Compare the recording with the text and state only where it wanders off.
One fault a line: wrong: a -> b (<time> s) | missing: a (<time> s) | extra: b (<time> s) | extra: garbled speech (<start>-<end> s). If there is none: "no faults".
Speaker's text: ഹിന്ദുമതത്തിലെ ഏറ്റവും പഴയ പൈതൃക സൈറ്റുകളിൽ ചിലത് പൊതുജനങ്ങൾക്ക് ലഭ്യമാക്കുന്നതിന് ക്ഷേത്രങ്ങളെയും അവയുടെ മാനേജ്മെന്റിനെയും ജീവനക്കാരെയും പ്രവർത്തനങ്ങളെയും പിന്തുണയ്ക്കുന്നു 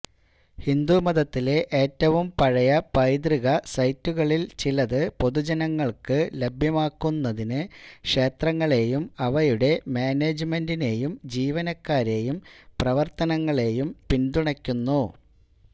no faults